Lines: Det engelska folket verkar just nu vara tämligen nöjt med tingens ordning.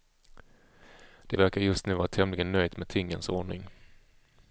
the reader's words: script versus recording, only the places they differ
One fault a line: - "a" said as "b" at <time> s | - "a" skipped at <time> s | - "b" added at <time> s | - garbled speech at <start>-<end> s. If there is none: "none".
- "engelska folket" skipped at 1.4 s